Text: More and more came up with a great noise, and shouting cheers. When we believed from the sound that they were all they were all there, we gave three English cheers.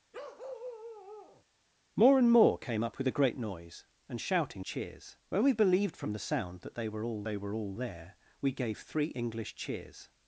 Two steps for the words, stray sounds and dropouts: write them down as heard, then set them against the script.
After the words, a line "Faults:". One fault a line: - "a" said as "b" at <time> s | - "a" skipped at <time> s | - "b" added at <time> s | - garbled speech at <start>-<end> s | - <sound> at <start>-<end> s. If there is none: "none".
More and more came up with a great noise, and shouting cheers. When we believed from the sound that they were all they were all there, we gave three English cheers.
Faults:
- bark at 0.1-1.4 s